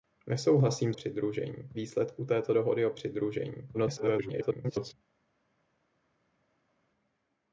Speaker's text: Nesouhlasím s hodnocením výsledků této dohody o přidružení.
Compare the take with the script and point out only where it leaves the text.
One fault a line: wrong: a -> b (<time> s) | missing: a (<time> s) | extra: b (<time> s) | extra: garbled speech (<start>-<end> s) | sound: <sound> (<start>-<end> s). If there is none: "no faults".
wrong: hodnocením -> přidružení (0.9 s)
extra: garbled speech (3.7-4.9 s)